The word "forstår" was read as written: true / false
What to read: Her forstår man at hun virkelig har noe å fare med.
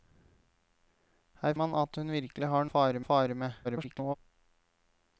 false